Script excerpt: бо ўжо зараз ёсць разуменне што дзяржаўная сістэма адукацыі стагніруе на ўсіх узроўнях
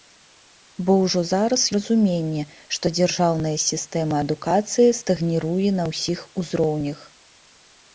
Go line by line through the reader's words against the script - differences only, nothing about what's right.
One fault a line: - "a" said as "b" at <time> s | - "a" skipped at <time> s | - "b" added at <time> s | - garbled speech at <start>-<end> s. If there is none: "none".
- "ёсць" skipped at 1.6 s